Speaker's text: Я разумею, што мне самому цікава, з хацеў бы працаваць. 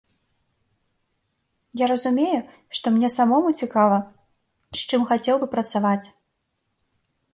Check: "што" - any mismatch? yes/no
no